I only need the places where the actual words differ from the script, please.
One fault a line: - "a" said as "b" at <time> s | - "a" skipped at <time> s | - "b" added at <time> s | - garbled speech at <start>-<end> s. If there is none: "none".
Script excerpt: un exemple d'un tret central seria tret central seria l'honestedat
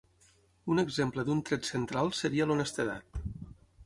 - "tret central seria" skipped at 2.5 s